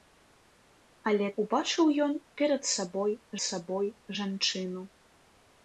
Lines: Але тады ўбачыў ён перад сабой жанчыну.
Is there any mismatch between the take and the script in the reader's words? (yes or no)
yes